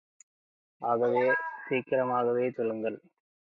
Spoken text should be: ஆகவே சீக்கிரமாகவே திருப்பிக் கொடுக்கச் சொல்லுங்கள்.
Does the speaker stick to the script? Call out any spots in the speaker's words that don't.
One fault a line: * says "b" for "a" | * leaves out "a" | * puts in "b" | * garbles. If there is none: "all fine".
* leaves out "திருப்பிக் கொடுக்கச்"